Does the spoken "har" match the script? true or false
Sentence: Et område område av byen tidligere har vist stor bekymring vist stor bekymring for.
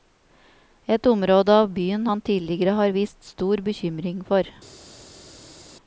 true